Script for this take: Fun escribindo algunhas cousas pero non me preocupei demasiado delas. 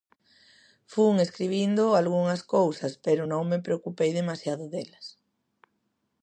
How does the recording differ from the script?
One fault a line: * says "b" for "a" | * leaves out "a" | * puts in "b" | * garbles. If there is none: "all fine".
all fine